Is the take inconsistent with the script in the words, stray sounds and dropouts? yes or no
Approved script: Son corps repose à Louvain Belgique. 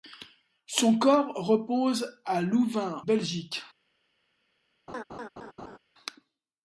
yes